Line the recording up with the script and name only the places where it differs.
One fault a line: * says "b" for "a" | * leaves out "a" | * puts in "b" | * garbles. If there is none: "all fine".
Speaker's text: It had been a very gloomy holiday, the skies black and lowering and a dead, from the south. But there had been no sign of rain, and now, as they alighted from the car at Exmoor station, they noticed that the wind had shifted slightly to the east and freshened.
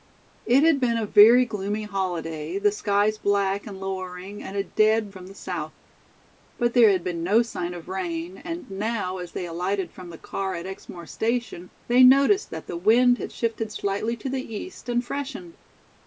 all fine